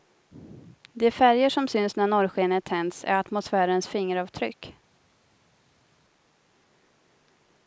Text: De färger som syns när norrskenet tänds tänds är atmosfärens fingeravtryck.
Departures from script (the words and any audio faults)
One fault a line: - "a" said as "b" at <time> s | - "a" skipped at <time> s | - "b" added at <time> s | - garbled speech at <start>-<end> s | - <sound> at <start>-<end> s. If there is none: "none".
- "tänds" skipped at 3.0 s